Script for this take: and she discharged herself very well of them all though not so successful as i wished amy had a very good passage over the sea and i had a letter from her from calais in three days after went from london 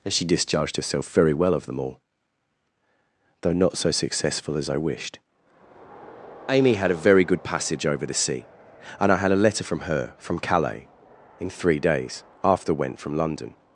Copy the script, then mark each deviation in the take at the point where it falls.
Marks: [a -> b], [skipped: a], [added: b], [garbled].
and she discharged herself very well of them all though not so successful as i wished amy had a very good passage over the sea and i had a letter from her from calais in three days after went from london